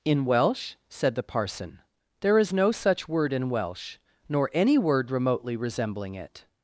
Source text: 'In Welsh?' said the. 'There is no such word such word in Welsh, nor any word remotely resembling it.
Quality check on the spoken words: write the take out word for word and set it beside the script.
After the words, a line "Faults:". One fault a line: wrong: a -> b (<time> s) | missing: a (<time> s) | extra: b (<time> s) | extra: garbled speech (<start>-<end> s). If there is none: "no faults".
'In Welsh?' said the parson. 'There is no such word in Welsh, nor any word remotely resembling it.
Faults:
extra: parson (1.2 s)
missing: such word (3.3 s)